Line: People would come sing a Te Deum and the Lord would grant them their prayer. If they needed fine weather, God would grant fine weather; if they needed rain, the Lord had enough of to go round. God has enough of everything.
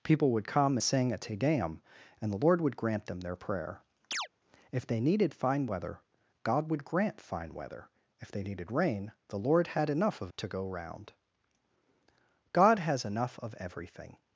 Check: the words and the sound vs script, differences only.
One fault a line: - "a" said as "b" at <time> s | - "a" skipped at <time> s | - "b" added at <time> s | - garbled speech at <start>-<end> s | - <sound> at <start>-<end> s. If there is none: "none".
- chirp at 4.1-4.3 s